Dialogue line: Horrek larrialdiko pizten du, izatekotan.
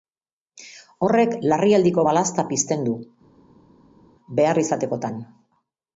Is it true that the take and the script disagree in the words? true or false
true